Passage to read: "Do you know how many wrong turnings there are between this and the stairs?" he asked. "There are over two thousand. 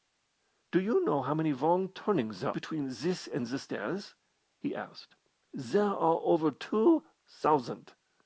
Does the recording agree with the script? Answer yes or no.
no